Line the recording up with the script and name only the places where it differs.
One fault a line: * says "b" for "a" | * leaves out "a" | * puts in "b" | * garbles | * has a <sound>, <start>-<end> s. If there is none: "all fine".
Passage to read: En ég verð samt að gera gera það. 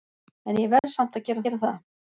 * has a dropout, 0.8-0.8 s